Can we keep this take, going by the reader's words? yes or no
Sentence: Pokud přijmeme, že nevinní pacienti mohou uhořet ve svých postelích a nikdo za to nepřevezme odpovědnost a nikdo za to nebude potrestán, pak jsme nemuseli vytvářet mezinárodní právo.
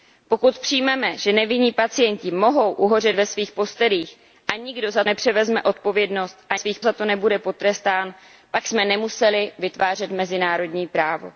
no